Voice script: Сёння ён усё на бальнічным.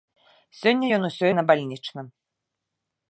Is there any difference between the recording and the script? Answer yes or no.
no